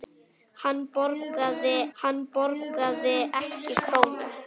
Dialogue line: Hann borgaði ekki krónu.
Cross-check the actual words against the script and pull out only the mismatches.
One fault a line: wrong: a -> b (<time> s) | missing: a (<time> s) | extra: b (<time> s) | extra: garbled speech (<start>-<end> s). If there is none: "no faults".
extra: hann borgaði (2.0 s)